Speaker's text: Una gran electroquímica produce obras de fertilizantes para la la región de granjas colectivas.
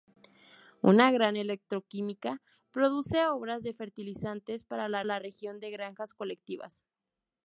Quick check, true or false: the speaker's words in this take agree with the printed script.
true